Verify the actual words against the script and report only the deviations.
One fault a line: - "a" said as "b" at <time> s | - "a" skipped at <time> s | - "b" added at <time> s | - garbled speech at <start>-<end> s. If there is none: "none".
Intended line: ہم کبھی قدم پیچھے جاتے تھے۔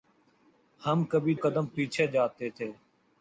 none